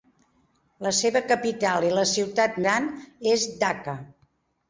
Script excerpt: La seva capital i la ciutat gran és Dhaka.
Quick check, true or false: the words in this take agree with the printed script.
true